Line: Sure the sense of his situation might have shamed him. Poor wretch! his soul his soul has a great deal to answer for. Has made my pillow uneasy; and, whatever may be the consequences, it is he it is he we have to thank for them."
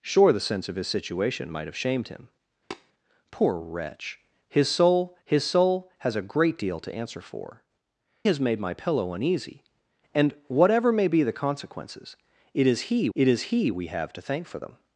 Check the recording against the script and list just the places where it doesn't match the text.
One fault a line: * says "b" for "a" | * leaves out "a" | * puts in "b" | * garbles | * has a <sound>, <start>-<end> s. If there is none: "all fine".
* has a tap, 2.7-2.9 s